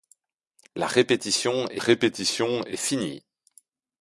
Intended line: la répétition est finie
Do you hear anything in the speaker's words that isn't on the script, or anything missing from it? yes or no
yes